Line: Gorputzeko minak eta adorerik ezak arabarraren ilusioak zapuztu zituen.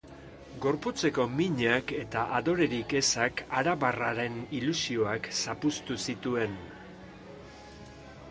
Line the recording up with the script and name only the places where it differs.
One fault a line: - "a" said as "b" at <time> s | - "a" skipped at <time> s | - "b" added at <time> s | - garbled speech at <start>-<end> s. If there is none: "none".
none